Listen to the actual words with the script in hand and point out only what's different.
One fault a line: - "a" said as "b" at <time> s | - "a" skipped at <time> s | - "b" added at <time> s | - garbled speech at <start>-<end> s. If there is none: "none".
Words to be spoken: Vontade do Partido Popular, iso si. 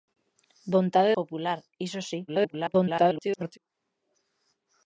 - "do Partido" skipped at 1.1 s
- garbled speech at 2.3-3.6 s